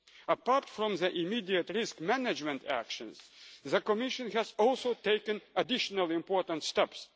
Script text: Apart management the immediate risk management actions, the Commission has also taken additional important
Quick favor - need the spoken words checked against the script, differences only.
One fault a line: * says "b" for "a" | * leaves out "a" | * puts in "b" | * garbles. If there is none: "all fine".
* says "from" for "management"